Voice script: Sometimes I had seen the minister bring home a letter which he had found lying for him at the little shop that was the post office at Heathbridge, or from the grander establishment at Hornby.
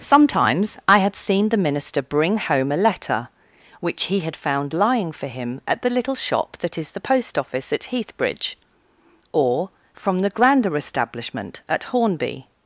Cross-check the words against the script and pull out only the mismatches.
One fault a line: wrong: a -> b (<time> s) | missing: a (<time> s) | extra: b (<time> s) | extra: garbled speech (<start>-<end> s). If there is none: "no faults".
wrong: was -> is (6.8 s)